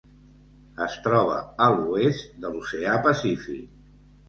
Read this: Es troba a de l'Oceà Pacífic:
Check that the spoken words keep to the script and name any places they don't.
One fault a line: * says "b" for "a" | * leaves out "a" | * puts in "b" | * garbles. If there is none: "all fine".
* puts in "l'oest"